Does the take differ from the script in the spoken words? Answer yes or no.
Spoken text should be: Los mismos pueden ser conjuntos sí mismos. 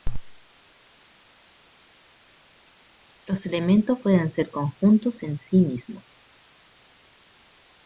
yes